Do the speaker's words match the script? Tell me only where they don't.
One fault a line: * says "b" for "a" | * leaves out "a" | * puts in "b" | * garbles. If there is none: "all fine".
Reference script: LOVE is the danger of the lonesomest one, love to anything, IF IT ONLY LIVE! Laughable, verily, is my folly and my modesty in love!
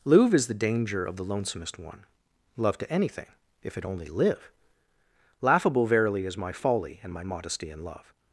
* says "Louvre" for "LOVE"